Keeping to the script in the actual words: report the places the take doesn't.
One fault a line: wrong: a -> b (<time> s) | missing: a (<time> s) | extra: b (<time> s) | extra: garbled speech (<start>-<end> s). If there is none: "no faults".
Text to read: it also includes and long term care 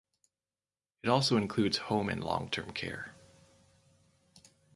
extra: home (1.8 s)